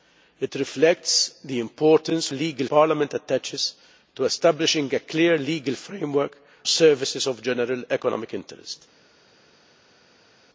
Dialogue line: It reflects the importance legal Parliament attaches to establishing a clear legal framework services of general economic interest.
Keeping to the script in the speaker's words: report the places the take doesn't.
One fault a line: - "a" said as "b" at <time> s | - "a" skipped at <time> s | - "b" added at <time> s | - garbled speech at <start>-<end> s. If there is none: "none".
none